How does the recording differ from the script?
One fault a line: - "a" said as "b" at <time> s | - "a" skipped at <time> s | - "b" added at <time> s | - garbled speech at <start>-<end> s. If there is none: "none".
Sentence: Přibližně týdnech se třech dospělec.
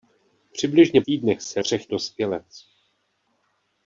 none